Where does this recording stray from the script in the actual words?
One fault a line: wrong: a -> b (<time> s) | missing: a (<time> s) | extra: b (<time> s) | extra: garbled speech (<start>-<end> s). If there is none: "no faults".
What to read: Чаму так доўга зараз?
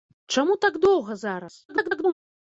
extra: garbled speech (1.7-2.1 s)